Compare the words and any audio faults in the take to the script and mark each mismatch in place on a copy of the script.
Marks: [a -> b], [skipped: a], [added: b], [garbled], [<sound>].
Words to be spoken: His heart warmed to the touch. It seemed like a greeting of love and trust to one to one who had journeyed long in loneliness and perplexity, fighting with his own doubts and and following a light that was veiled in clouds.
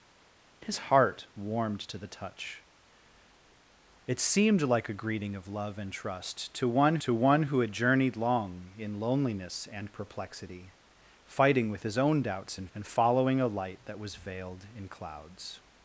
His heart warmed to the touch. It seemed like a greeting of love and trust to one to one who had journeyed long in loneliness and perplexity, fighting with his own doubts and and following a light that was veiled in clouds.